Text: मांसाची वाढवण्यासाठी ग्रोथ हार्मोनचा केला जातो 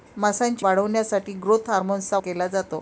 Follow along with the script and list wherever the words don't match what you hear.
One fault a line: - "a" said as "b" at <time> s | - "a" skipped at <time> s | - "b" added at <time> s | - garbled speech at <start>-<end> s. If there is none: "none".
none